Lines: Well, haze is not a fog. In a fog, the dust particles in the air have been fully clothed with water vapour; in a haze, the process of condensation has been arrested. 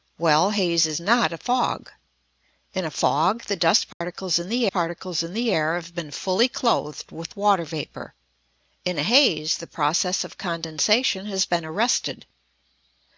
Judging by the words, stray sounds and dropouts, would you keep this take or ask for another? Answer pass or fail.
fail